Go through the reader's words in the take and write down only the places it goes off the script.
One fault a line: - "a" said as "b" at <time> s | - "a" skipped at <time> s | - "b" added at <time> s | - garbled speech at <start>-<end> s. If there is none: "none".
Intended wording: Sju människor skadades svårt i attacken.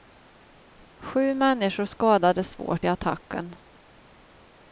none